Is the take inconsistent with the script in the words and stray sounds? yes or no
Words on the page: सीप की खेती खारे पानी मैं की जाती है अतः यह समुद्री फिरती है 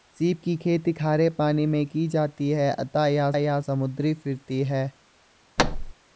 yes